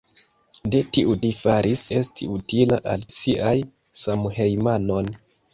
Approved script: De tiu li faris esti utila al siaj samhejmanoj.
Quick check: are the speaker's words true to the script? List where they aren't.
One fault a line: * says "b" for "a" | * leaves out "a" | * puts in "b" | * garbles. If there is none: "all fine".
all fine